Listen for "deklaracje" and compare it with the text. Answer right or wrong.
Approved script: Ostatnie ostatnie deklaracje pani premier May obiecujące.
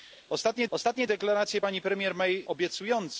right